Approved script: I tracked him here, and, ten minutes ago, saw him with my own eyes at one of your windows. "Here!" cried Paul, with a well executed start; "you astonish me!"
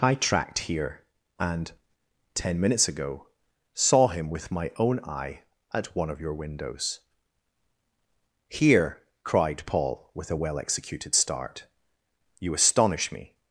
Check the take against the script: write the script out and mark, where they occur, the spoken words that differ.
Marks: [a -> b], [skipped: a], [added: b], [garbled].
I tracked [skipped: him] here, and, ten minutes ago, saw him with my own [eyes -> eye] at one of your windows. "Here!" cried Paul, with a well executed start; "you astonish me!"